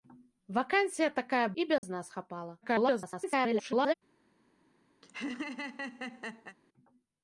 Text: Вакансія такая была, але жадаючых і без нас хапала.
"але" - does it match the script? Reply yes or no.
no